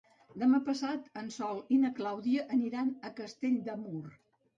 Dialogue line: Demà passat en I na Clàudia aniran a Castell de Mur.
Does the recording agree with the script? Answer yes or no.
no